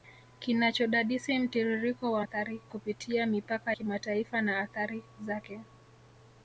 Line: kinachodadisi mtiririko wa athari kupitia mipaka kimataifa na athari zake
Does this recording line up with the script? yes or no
yes